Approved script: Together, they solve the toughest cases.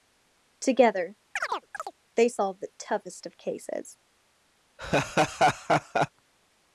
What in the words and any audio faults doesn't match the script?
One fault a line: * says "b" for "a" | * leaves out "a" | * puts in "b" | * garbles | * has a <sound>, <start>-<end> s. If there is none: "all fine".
* has a chirp, 1.4-1.9 s
* puts in "of"
* has a laugh, 4.8-6.1 s